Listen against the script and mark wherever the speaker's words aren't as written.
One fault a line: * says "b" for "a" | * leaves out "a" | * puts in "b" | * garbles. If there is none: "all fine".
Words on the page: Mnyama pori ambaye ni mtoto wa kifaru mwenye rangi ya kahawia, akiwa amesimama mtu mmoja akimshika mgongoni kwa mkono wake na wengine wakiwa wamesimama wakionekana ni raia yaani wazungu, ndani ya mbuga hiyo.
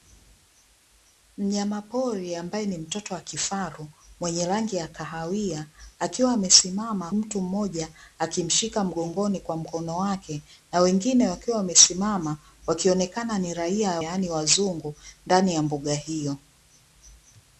all fine